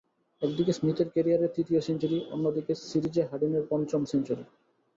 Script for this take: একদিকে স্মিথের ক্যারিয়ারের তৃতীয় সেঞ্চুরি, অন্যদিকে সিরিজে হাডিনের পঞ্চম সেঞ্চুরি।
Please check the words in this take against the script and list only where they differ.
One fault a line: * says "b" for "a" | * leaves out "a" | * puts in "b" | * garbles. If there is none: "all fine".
all fine